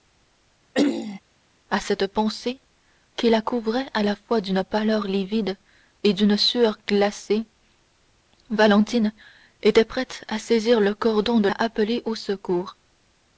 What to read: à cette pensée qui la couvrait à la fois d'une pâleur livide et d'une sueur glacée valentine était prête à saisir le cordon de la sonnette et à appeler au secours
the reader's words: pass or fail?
fail